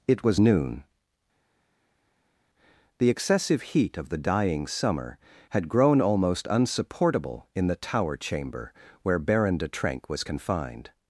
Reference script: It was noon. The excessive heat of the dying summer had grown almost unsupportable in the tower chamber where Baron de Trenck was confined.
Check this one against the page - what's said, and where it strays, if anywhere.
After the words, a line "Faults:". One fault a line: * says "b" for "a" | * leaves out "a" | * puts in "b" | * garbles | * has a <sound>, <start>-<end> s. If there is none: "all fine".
It was noon. The excessive heat of the dying summer had grown almost unsupportable in the tower chamber where Baron de Trenck was confined.
Faults:
all fine